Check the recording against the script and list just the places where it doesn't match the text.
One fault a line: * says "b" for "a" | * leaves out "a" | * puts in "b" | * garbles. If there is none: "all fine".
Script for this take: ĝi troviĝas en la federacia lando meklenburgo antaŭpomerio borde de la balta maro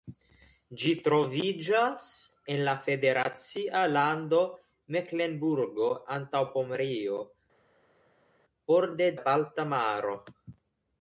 * leaves out "de"